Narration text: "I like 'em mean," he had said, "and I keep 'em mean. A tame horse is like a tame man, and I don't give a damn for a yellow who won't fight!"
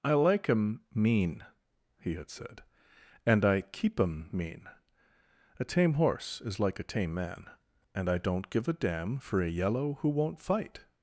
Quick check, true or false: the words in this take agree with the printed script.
true